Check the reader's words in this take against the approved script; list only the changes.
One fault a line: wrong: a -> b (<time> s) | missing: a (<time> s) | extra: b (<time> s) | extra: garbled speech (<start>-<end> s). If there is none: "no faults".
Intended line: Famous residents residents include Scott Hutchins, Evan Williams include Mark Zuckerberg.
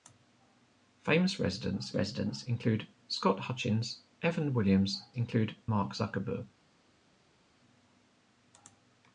no faults